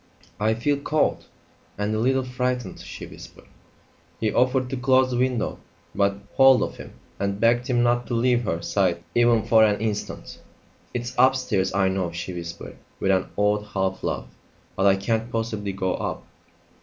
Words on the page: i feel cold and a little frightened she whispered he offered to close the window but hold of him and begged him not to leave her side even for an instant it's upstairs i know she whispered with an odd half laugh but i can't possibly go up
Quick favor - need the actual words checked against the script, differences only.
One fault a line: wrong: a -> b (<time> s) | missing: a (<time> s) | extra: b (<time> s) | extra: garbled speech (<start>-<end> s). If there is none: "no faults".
no faults